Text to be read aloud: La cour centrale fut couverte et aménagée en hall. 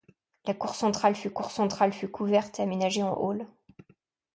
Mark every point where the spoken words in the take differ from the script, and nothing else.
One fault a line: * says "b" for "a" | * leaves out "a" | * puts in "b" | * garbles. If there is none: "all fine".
* puts in "cour centrale fut"